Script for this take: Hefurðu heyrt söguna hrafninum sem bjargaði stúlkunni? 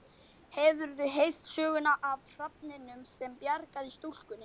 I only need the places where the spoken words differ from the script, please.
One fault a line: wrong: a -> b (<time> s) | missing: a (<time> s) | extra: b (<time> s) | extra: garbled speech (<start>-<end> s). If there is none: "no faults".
extra: af (2.1 s)